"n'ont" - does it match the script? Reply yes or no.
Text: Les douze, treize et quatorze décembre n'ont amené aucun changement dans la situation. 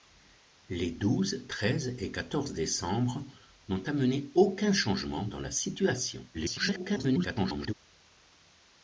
yes